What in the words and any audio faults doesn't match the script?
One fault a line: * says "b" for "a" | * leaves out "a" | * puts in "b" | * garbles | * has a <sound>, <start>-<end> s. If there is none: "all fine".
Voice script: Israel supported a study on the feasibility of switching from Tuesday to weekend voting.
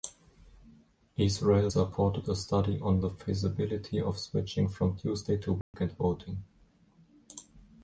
* has a dropout, 5.6-5.7 s